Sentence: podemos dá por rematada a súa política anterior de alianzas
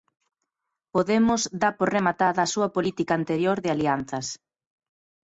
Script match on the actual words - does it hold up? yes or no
yes